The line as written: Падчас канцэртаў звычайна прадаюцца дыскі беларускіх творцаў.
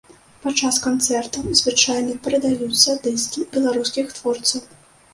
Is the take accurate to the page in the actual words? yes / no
yes